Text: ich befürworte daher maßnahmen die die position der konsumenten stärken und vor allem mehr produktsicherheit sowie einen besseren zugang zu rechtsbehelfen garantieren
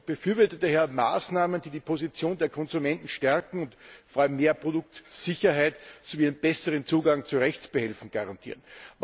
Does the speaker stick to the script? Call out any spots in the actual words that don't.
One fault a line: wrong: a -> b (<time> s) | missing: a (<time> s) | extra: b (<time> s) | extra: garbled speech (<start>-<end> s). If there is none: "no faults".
no faults